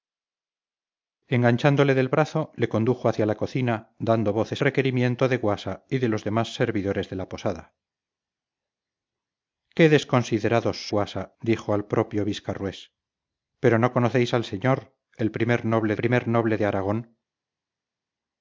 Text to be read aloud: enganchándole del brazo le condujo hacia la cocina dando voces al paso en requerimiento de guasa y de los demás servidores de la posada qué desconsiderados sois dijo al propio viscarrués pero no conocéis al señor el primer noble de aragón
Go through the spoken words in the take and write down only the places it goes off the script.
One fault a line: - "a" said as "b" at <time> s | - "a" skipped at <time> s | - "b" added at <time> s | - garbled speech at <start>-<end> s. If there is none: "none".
- "al paso en" skipped at 4.6 s
- "sois" said as "guasa" at 10.9 s
- "primer noble" added at 15.9 s